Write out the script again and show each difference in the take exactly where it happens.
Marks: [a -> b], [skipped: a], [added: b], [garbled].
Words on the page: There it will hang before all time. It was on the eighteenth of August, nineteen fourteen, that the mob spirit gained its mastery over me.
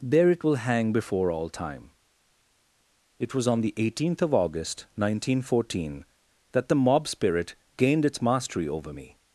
There it will hang before all time. It was on the eighteenth of August, nineteen fourteen, that the mob spirit gained its mastery over me.